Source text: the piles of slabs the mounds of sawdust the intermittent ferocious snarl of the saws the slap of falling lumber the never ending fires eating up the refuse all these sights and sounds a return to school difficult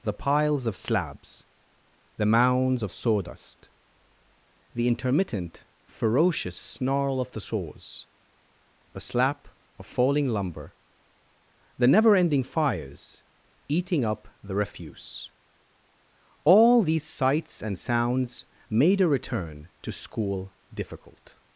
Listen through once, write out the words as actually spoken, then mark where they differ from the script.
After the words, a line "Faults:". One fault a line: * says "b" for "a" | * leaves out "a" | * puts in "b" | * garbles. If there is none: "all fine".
the piles of slabs the mounds of sawdust the intermittent ferocious snarl of the saws the slap of falling lumber the never ending fires eating up the refuse all these sights and sounds made a return to school difficult
Faults:
* puts in "made"